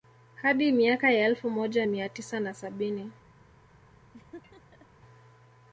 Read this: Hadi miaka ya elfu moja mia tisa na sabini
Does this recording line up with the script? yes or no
yes